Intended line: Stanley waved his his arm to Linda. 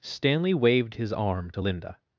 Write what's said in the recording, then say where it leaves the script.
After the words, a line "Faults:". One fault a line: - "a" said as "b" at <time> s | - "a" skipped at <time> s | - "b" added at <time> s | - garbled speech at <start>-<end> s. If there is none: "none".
Stanley waved his arm to Linda.
Faults:
- "his" skipped at 1.1 s